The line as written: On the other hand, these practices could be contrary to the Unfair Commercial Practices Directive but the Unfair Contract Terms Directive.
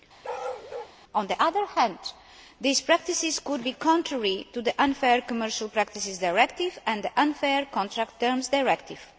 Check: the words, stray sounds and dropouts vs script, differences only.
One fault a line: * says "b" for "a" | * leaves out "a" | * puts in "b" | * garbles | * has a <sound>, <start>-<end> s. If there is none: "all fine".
* has a bark, 0.2-1.0 s
* says "and" for "but"